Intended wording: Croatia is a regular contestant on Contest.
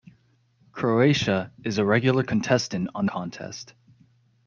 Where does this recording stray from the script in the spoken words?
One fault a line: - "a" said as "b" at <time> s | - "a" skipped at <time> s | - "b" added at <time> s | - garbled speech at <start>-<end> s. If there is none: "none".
none